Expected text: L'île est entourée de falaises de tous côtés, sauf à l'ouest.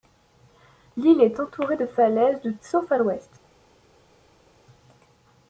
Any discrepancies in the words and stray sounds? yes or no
yes